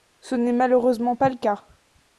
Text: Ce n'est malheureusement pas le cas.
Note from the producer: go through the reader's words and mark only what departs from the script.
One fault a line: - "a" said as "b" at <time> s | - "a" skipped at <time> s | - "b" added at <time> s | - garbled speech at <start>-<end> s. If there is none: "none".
none